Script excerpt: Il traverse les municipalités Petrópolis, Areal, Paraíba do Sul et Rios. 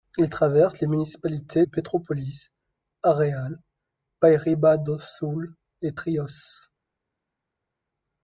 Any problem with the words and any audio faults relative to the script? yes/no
no